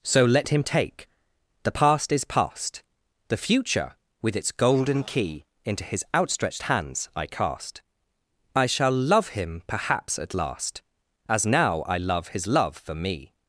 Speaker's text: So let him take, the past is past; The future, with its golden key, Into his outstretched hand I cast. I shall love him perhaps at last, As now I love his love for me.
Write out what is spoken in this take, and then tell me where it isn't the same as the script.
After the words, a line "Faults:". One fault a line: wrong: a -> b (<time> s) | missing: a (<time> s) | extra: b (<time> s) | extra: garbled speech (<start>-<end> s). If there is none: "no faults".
So let him take, the past is past; The future, with its golden key, Into his outstretched hands I cast. I shall love him perhaps at last, As now I love his love for me.
Faults:
wrong: hand -> hands (6.6 s)